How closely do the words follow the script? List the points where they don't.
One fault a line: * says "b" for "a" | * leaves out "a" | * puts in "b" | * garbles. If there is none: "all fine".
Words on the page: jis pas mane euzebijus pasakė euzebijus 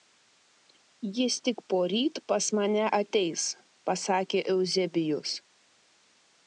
* puts in "tik poryt"
* says "ateis" for "euzebijus"